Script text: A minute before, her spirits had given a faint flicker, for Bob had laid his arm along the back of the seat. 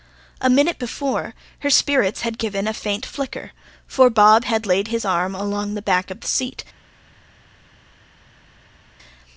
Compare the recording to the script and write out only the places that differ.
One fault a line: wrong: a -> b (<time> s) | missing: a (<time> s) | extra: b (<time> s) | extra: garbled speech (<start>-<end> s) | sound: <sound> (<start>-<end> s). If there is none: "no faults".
no faults